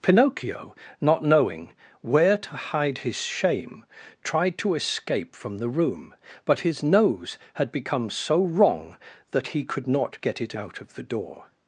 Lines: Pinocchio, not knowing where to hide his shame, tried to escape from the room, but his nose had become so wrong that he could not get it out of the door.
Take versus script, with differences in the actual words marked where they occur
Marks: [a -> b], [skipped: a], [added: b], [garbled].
Pinocchio, not knowing where to hide his shame, tried to escape from the room, but his nose had become so wrong that he could not get it out of the door.